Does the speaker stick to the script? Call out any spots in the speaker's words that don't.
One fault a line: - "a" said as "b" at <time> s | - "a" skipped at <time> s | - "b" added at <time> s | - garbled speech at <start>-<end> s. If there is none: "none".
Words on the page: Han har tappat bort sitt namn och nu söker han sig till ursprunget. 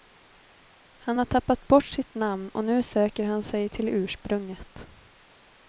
none